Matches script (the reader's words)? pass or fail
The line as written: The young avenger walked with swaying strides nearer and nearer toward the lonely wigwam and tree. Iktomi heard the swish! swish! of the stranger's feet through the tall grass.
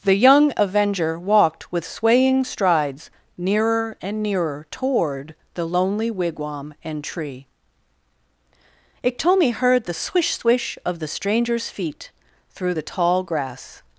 pass